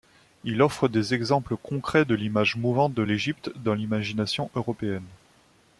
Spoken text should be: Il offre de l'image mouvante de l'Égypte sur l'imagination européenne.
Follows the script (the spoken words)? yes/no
no